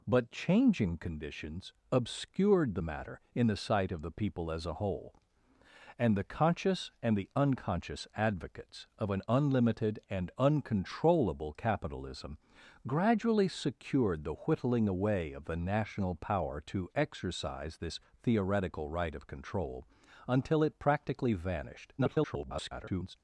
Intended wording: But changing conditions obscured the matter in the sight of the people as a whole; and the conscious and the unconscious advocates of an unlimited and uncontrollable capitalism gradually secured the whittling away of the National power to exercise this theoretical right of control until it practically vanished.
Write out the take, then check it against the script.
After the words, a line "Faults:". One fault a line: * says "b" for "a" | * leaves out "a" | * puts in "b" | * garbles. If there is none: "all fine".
But changing conditions obscured the matter in the sight of the people as a whole; and the conscious and the unconscious advocates of an unlimited and uncontrollable capitalism gradually secured the whittling away of the National power to exercise this theoretical right of control until it practically vanished. [garbled]
Faults:
* garbles